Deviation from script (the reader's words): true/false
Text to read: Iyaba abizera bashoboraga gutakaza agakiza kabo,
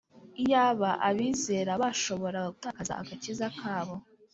false